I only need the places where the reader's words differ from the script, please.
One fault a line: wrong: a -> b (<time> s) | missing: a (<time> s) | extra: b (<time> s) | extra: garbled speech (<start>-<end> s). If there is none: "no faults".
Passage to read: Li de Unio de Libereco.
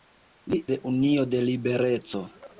no faults